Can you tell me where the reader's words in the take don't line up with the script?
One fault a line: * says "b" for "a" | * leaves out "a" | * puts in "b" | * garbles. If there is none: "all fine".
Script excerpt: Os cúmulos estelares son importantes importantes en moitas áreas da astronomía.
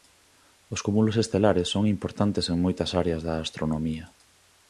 * leaves out "importantes"